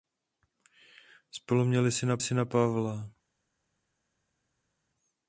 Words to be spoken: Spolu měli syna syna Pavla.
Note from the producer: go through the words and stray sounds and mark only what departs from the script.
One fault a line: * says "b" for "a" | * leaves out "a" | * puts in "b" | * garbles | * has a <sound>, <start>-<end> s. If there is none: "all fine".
all fine